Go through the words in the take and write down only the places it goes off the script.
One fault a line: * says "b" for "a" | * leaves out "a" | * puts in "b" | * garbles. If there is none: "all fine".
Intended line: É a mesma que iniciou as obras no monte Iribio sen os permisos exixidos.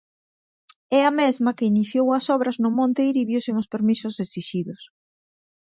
all fine